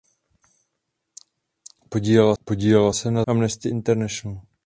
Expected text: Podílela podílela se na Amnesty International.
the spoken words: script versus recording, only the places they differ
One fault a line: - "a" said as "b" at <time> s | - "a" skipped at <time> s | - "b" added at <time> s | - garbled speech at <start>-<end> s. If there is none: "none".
none